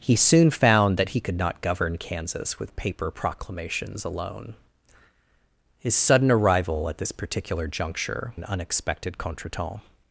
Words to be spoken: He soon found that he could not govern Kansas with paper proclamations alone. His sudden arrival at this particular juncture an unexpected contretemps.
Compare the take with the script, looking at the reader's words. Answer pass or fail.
pass